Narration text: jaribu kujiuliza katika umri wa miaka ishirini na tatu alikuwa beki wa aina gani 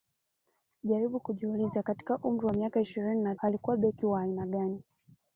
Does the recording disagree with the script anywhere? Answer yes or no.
yes